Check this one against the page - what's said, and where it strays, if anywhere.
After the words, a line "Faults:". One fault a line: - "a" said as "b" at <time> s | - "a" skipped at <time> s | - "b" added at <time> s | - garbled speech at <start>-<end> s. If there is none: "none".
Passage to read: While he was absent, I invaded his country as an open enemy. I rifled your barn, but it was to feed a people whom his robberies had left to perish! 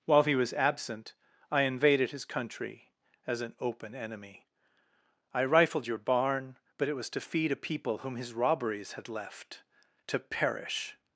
While he was absent, I invaded his country as an open enemy. I rifled your barn, but it was to feed a people whom his robberies had left to perish!
Faults:
none